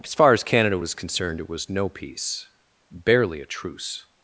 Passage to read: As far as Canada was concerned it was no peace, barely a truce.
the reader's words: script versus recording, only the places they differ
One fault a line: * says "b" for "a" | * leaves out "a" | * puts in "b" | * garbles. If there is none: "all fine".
all fine